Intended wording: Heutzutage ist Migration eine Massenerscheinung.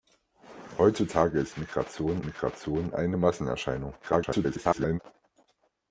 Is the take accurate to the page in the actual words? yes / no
no